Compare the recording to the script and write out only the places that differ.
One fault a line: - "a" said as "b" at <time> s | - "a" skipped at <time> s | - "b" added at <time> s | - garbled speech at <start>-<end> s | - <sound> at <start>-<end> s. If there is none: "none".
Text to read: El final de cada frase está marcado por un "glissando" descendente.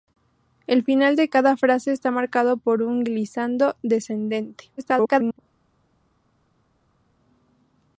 - garbled speech at 4.8-5.4 s